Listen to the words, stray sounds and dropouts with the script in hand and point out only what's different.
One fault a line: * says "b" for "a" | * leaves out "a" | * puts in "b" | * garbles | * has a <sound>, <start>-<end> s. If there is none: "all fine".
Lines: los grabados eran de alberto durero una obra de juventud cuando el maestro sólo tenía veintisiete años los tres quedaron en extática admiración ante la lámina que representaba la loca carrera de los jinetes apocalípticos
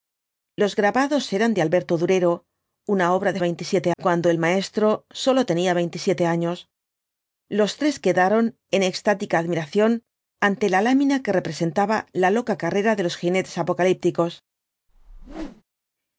* says "veintisiete" for "juventud"
* has a whoosh, 14.9-15.6 s